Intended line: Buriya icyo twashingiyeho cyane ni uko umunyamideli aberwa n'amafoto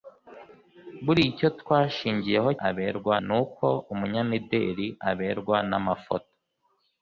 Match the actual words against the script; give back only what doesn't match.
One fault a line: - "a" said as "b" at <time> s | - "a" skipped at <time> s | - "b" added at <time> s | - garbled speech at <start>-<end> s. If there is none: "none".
- "cyane" said as "aberwa" at 2.7 s